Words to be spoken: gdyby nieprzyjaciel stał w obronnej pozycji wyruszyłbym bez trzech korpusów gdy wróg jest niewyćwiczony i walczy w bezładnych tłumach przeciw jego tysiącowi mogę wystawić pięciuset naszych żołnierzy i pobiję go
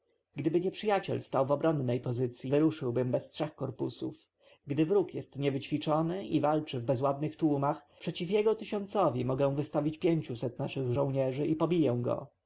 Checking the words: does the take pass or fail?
pass